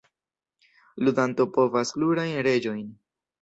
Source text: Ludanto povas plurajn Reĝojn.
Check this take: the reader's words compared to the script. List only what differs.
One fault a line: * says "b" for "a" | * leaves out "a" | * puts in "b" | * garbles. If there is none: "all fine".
all fine